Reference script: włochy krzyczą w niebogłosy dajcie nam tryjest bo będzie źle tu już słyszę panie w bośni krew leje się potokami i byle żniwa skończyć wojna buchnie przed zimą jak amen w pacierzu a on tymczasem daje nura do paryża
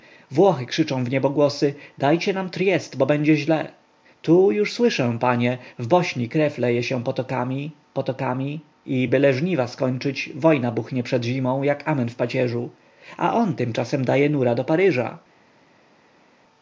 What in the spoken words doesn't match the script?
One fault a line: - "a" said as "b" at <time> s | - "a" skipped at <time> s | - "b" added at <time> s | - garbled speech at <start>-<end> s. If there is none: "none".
- "potokami" added at 7.9 s